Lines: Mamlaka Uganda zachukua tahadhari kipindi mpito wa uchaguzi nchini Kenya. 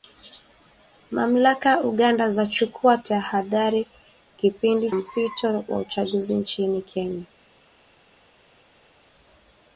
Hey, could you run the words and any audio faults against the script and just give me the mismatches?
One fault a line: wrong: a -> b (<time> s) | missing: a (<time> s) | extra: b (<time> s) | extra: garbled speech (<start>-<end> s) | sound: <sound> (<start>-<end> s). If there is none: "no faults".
no faults